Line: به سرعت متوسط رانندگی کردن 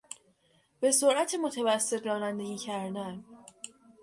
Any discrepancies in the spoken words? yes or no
no